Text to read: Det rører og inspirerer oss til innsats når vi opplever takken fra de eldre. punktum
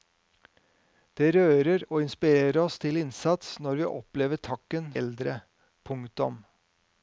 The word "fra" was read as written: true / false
false